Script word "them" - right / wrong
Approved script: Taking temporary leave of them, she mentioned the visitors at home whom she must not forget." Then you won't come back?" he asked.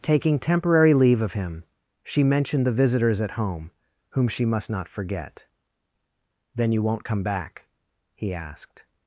wrong